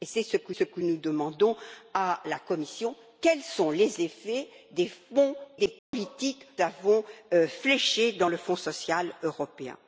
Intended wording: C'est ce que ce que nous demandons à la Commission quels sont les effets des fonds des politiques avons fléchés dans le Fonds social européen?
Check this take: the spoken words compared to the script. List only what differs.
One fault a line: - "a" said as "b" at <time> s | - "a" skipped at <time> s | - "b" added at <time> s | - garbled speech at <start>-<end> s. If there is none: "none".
none